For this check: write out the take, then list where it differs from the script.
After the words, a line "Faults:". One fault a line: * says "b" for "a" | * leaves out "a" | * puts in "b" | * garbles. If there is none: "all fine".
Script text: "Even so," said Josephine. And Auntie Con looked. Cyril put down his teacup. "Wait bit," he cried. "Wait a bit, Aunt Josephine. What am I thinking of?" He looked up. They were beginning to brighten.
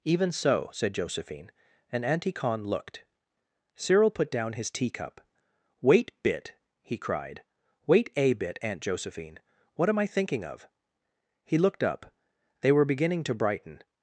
"Even so," said Josephine. And Auntie Con looked. Cyril put down his teacup. "Wait bit," he cried. "Wait a bit, Aunt Josephine. What am I thinking of?" He looked up. They were beginning to brighten.
Faults:
all fine